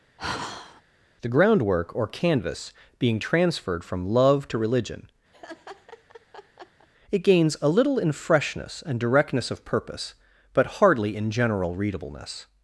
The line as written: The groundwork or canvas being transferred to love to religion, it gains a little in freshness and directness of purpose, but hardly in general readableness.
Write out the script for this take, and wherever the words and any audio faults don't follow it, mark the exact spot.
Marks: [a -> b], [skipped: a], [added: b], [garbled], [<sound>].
[sigh] The groundwork or canvas being transferred [to -> from] love to religion, [laugh] it gains a little in freshness and directness of purpose, but hardly in general readableness.